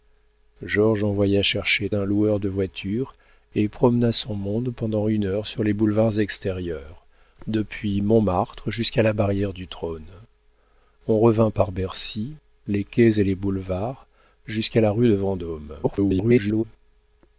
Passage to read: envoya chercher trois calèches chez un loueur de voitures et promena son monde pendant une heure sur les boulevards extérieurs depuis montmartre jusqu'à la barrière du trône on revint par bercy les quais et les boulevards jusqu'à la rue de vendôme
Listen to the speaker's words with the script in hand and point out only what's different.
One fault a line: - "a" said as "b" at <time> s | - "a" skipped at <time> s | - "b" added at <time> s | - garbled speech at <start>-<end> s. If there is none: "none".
- "trois calèches chez" skipped at 1.9 s
- garbled speech at 15.8-16.6 s